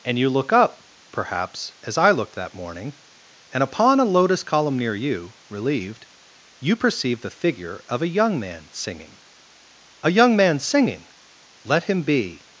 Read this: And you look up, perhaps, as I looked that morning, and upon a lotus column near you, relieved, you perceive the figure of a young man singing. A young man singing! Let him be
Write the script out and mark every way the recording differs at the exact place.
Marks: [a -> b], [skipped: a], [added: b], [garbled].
And you look up, perhaps, as I looked that morning, and upon a lotus column near you, relieved, you perceive the figure of a young man singing. A young man singing! Let him be